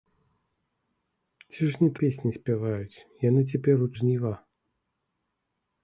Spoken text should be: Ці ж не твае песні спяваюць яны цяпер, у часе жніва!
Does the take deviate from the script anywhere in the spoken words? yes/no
yes